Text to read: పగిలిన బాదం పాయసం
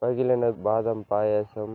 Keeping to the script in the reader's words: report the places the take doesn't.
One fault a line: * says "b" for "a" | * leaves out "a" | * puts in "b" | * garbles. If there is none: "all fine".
all fine